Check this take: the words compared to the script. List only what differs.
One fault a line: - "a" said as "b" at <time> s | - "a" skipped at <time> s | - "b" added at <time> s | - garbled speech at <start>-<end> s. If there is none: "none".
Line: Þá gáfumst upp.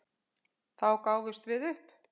- "við" added at 1.5 s